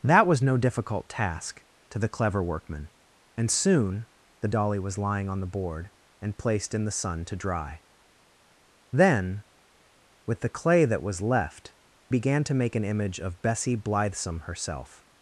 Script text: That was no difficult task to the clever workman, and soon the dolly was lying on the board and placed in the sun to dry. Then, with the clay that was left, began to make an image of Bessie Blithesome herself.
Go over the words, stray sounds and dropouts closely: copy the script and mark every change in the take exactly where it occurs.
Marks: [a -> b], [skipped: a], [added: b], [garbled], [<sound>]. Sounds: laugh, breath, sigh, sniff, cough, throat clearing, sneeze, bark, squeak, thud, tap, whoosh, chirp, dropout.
That was no difficult task to the clever workman, and soon the dolly was lying on the board and placed in the sun to dry. Then, with the clay that was left, began to make an image of Bessie Blithesome herself.